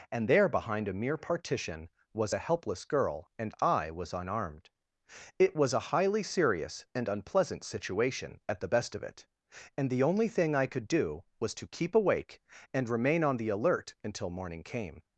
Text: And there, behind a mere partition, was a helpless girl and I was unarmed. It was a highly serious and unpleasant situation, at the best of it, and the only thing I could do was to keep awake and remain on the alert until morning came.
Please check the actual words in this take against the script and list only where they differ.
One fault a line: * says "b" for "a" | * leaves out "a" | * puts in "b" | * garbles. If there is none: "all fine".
all fine